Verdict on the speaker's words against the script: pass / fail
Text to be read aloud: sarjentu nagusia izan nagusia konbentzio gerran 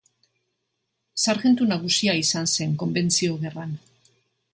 fail